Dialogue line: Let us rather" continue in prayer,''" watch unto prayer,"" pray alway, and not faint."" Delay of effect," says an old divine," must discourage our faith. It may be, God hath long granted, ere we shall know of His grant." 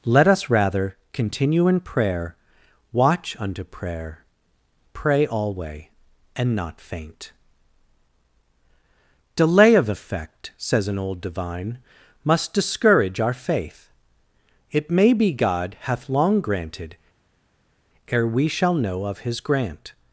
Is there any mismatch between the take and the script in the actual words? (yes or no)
no